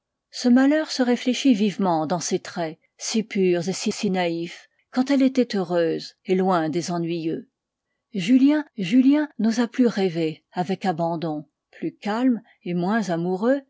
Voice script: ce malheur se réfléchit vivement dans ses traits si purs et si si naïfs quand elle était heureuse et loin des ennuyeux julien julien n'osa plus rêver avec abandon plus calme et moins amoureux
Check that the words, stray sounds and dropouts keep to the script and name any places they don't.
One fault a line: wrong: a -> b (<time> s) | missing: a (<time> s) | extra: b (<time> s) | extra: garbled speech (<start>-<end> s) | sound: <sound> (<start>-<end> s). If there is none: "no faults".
no faults